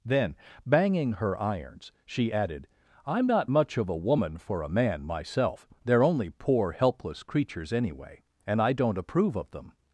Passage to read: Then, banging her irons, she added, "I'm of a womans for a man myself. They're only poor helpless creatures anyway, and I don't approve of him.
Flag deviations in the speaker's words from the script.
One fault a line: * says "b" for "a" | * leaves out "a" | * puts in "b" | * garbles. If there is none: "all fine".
* puts in "not much"
* says "woman" for "womans"
* says "them" for "him"